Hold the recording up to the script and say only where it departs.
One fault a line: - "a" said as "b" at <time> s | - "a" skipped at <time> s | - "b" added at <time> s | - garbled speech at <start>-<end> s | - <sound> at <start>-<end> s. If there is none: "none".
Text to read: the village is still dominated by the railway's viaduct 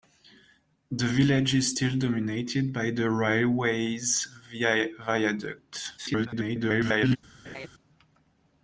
- garbled speech at 6.0-7.2 s
- laugh at 7.4-7.7 s